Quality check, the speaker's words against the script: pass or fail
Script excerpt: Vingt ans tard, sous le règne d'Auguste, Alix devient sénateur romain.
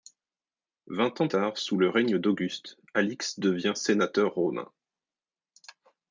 pass